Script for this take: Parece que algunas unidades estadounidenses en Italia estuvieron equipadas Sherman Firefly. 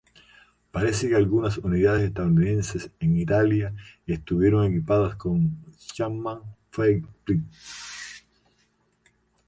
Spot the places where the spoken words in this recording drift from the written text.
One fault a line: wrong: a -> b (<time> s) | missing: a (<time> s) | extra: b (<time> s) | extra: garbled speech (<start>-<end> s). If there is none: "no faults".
extra: con (5.1 s)